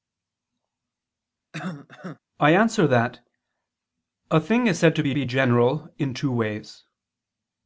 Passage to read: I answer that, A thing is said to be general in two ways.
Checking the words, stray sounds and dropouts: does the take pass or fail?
fail